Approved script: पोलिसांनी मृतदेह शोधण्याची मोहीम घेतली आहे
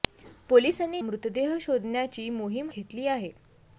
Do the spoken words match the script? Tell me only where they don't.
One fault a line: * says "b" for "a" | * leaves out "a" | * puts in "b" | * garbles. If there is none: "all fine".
all fine